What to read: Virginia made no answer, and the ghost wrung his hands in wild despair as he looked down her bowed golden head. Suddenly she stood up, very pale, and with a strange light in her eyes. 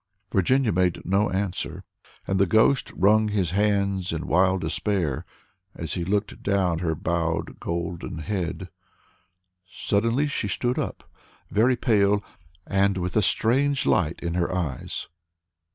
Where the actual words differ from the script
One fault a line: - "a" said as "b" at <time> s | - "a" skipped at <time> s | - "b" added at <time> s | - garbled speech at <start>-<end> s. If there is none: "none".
none